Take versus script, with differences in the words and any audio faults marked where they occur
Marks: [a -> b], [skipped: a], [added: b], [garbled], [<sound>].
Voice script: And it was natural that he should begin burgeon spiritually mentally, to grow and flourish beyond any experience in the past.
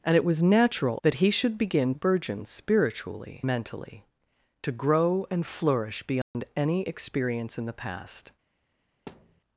And it was natural that he should begin burgeon spiritually mentally, to grow and flourish beyond [dropout] any experience in the past. [thud]